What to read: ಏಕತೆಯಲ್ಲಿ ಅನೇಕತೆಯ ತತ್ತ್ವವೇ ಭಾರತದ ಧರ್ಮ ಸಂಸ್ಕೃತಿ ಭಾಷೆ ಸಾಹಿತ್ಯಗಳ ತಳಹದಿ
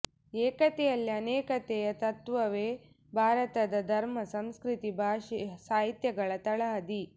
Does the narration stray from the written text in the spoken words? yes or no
no